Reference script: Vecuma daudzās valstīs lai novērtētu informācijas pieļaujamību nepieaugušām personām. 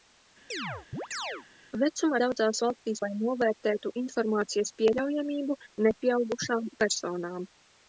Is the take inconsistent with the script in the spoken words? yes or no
no